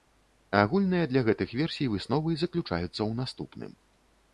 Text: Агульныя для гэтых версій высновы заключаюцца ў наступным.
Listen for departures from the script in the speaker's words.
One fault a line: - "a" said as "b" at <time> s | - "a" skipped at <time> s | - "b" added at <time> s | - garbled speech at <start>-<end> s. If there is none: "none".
none